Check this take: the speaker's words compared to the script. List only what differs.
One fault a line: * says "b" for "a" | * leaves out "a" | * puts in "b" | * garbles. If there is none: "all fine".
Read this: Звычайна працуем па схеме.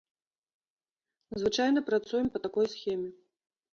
* puts in "такой"